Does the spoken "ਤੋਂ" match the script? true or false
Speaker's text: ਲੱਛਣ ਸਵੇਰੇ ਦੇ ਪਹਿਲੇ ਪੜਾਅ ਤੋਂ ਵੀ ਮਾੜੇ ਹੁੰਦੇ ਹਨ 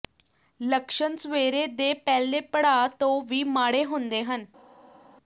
true